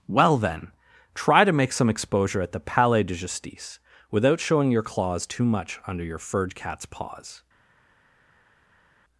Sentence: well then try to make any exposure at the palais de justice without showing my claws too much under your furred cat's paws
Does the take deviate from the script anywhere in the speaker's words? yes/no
yes